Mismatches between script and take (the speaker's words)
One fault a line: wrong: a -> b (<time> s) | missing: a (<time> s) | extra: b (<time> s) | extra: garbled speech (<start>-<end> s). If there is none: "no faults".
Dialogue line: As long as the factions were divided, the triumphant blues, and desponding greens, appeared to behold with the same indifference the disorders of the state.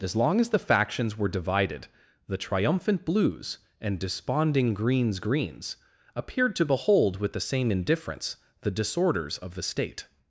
extra: greens (5.2 s)